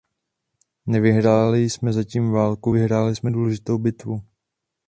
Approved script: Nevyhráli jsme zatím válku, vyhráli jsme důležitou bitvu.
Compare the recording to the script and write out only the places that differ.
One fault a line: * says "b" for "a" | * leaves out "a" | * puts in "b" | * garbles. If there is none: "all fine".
all fine